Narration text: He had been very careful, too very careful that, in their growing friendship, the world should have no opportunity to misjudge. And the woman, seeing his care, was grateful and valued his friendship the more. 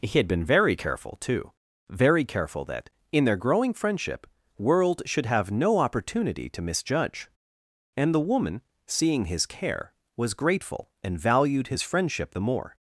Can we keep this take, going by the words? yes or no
no